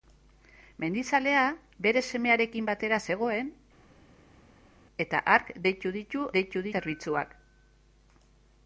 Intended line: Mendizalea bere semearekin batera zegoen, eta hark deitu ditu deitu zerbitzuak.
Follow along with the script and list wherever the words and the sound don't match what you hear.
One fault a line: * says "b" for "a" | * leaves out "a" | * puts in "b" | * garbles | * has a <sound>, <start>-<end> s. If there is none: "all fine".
all fine